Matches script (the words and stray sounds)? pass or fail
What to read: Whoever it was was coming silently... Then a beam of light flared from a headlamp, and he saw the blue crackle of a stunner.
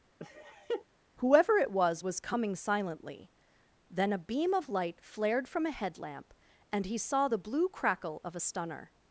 fail